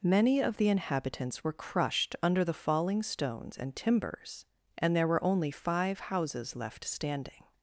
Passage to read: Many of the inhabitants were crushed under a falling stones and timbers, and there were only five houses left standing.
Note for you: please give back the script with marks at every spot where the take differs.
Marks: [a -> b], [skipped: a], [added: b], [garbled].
Many of the inhabitants were crushed under [a -> the] falling stones and timbers, and there were only five houses left standing.